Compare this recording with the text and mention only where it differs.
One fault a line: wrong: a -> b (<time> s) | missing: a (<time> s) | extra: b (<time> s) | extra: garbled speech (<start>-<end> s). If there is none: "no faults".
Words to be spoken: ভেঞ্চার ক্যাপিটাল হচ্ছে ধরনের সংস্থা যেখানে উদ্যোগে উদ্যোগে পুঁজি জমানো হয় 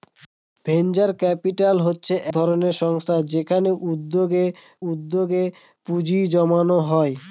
no faults